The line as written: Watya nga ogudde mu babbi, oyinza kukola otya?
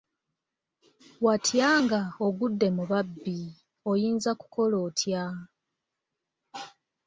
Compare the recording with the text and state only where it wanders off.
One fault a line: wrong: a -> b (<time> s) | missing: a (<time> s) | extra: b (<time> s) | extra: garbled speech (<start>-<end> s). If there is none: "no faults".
no faults